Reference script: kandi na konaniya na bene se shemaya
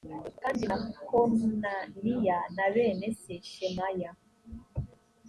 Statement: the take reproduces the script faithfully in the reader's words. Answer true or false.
true